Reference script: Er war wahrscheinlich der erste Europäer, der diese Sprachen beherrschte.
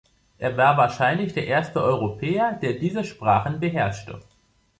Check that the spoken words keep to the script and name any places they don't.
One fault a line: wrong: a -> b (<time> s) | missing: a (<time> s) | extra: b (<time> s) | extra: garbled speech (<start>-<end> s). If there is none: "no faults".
no faults